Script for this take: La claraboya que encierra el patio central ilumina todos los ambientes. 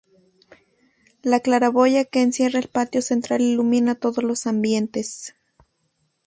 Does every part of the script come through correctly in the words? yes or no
yes